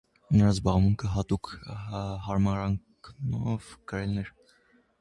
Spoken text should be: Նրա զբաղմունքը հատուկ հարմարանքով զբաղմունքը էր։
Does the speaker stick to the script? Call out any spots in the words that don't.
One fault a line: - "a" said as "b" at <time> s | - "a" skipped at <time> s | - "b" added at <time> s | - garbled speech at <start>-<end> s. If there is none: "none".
- "զբաղմունքը" said as "գրելն" at 3.9 s